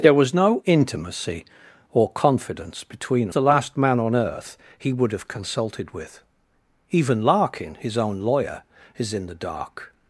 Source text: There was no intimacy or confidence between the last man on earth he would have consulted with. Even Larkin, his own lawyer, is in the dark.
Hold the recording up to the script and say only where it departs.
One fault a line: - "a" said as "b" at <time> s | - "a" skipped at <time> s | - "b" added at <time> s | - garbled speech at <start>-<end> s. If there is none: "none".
none